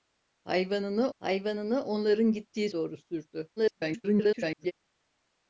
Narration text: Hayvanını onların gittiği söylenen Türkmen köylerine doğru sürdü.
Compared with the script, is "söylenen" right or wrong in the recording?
wrong